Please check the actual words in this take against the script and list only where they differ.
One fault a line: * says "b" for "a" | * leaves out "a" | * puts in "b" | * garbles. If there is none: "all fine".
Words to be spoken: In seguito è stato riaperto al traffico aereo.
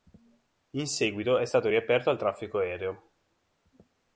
all fine